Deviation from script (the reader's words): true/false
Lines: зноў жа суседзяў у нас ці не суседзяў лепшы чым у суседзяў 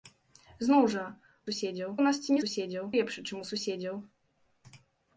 false